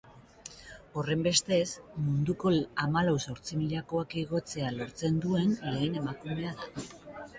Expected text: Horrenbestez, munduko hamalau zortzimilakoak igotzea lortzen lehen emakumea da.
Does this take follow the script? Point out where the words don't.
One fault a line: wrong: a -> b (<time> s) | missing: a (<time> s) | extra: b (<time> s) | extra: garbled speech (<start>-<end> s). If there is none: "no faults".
extra: duen (5.3 s)